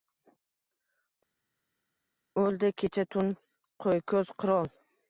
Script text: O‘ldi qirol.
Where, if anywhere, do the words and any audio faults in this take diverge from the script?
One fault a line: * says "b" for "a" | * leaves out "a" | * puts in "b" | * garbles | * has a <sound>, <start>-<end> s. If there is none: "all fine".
* puts in "kecha tun qo‘yko‘z"